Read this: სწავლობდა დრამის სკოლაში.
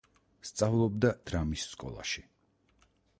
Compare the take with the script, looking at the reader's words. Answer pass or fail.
pass